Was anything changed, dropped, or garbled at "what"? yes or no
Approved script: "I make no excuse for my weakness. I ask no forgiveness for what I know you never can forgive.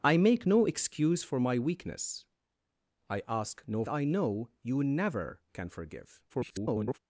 yes